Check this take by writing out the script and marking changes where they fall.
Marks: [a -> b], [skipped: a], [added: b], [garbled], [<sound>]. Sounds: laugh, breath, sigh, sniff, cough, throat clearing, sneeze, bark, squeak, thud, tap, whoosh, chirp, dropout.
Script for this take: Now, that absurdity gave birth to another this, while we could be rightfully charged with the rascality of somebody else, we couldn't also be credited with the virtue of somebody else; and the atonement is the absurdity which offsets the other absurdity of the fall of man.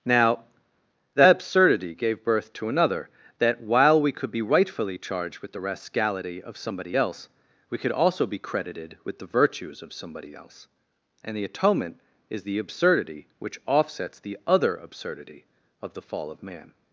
Now, that absurdity gave birth to another [this, -> that] while we could be rightfully charged with the rascality of somebody else, we [couldn't -> could] also be credited with the [virtue -> virtues] of somebody else; and the atonement is the absurdity which offsets the other absurdity of the fall of man.